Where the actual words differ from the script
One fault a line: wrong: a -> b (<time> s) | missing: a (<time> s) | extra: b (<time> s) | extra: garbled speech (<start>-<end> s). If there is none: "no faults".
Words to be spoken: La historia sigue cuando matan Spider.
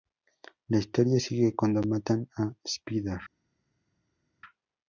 extra: a (2.4 s)